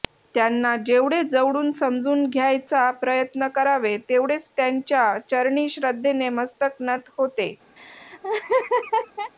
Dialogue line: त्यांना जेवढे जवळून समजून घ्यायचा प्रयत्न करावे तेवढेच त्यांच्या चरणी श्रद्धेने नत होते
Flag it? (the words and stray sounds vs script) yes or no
yes